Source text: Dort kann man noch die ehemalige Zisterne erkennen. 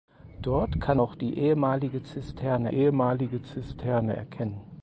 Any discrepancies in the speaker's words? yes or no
yes